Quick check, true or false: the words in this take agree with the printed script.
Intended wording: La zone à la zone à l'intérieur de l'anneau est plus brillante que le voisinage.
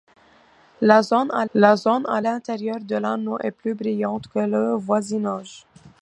true